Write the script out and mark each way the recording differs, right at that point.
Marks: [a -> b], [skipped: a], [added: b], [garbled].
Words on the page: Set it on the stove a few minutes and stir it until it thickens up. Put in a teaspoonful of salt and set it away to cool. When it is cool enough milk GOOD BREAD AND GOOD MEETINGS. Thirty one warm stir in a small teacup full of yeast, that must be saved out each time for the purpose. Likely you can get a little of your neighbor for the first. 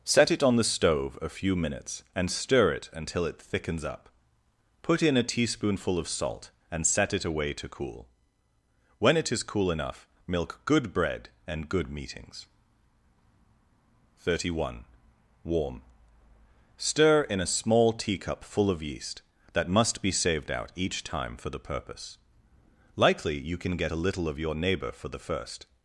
Set it on the stove a few minutes and stir it until it thickens up. Put in a teaspoonful of salt and set it away to cool. When it is cool enough milk GOOD BREAD AND GOOD MEETINGS. Thirty one warm stir in a small teacup full of yeast, that must be saved out each time for the purpose. Likely you can get a little of your neighbor for the first.